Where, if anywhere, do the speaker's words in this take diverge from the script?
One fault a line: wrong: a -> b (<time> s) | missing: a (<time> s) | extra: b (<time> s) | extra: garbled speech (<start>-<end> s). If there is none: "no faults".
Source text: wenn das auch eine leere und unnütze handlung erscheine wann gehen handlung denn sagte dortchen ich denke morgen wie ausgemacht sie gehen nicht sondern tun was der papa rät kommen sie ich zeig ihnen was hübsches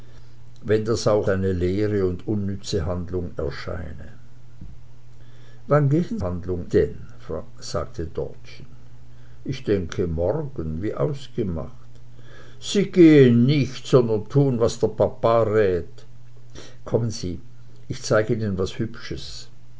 no faults